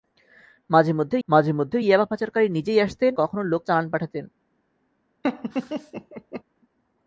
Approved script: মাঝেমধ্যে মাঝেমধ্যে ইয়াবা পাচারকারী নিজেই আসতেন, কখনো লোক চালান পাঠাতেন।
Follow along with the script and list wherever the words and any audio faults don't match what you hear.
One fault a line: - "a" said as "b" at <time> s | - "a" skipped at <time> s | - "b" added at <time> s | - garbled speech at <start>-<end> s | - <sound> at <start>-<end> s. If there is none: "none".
- laugh at 5.2-6.4 s